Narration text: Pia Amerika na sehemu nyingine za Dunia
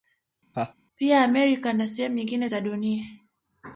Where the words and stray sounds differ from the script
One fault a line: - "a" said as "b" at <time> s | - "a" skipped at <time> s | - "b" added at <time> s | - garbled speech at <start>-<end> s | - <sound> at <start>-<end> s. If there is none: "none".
- laugh at 0.5-0.7 s